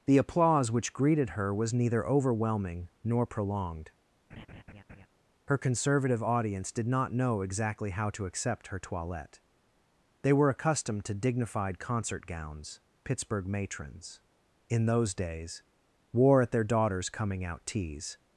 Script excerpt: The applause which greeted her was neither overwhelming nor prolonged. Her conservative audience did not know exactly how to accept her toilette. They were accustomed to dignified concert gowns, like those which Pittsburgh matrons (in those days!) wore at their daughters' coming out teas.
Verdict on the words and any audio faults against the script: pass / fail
fail